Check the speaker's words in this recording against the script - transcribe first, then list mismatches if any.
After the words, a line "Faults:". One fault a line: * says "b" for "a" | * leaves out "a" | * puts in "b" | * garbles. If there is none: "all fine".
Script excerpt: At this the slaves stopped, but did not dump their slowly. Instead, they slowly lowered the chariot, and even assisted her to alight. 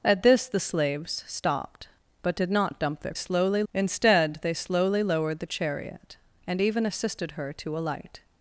At this the slaves stopped, but did not dump their slowly. Instead, they slowly lowered the chariot, and even assisted her to alight.
Faults:
all fine